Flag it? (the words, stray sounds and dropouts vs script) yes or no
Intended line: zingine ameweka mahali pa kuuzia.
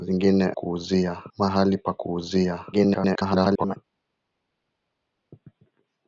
yes